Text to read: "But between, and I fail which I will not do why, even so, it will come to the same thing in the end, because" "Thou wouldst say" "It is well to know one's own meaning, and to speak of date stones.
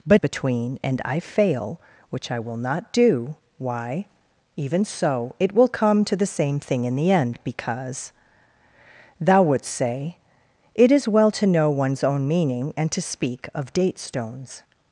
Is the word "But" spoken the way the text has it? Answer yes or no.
yes